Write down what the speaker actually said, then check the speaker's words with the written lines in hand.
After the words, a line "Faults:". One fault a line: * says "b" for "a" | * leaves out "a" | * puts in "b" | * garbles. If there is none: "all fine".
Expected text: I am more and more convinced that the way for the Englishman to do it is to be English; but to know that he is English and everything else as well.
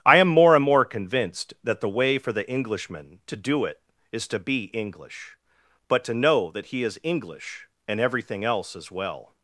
I am more and more convinced that the way for the Englishman to do it is to be English; but to know that he is English and everything else as well.
Faults:
all fine